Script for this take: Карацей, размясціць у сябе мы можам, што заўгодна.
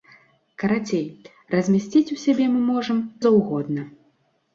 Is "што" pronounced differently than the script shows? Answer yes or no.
yes